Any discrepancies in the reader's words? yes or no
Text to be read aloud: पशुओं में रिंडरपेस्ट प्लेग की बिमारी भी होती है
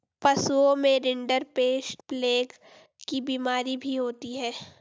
no